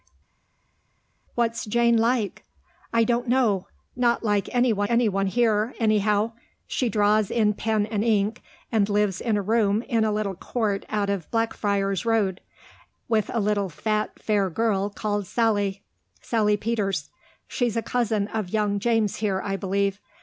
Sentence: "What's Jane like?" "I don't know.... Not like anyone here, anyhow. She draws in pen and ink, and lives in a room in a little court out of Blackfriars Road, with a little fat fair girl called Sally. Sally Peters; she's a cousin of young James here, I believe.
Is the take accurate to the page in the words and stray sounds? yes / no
no